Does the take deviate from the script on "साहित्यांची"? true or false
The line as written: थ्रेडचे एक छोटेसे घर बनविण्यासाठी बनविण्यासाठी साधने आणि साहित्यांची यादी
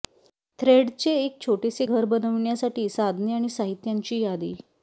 false